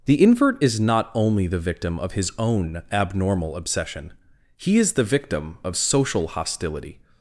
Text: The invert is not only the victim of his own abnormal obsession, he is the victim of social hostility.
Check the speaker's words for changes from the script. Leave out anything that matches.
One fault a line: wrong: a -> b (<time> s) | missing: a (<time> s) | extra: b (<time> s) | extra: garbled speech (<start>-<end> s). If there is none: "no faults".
no faults